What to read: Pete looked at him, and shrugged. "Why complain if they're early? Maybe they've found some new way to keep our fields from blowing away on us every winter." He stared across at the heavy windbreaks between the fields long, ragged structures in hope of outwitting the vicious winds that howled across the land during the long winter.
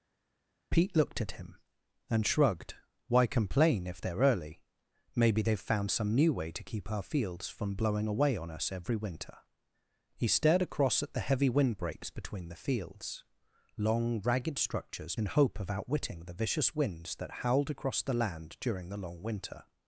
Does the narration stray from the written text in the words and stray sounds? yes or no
no